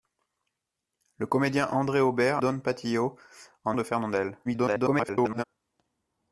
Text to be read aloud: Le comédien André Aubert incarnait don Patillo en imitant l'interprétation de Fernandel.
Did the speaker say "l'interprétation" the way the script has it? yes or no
no